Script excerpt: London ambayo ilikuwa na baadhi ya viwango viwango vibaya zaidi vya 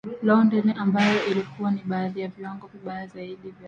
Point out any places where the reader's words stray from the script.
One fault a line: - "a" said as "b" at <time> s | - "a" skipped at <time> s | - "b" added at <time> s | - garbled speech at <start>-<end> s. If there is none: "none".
- "viwango" skipped at 2.7 s